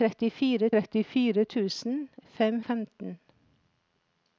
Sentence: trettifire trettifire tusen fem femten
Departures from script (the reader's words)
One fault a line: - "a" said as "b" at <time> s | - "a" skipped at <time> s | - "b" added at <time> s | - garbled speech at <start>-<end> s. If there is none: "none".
none